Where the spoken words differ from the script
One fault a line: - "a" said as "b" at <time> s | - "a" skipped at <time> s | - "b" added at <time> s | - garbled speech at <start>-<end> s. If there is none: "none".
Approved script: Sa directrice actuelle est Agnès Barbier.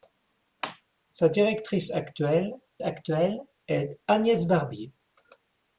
- "actuelle" added at 2.8 s